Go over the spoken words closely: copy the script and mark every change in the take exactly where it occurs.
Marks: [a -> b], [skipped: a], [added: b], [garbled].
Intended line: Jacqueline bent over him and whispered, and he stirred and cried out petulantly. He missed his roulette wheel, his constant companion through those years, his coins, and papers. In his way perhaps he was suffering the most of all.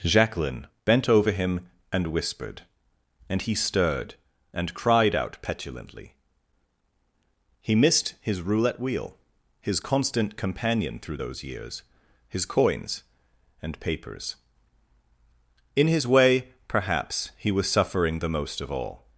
Jacqueline bent over him and whispered, and he stirred and cried out petulantly. He missed his roulette wheel, his constant companion through those years, his coins, and papers. In his way perhaps he was suffering the most of all.